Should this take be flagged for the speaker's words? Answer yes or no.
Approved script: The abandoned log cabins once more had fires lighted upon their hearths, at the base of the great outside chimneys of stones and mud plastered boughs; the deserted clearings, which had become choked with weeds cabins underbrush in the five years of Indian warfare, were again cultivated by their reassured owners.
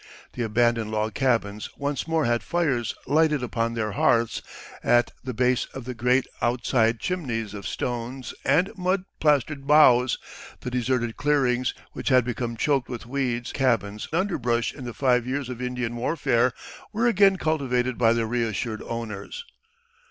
no